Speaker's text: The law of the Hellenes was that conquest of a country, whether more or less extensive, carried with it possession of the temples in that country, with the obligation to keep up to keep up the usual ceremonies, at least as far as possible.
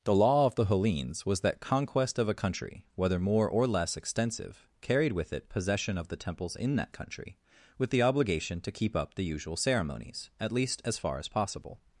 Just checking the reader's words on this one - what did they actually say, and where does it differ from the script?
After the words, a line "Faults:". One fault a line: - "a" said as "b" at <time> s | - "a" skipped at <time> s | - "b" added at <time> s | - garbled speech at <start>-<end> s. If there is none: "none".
The law of the Hellenes was that conquest of a country, whether more or less extensive, carried with it possession of the temples in that country, with the obligation to keep up the usual ceremonies, at least as far as possible.
Faults:
- "to keep up" skipped at 9.1 s